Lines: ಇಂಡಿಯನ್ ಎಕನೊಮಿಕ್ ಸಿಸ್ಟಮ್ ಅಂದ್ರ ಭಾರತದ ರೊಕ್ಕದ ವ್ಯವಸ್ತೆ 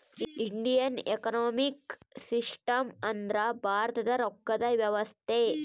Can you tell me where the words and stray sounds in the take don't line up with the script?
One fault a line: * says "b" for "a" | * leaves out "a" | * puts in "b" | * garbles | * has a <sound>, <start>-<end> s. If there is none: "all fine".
all fine